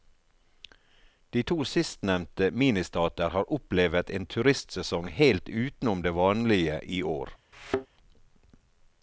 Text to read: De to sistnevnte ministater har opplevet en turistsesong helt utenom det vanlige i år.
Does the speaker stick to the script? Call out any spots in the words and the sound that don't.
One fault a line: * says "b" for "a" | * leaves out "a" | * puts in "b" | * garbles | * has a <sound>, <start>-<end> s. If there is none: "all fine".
* has a thud, 7.5-7.9 s